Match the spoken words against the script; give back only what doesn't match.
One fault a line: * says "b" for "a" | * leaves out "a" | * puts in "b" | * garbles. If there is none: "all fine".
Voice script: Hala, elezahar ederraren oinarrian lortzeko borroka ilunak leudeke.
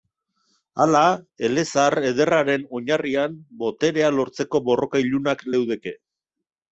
* puts in "boterea"